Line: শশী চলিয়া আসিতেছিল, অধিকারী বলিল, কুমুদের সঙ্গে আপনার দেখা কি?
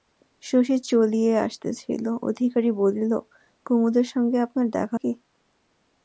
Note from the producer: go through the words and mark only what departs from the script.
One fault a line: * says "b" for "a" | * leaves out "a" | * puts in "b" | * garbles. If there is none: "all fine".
all fine